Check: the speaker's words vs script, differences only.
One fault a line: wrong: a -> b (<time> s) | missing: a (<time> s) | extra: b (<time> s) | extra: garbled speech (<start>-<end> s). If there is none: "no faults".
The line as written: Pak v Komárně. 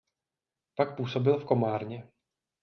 extra: působil (1.0 s)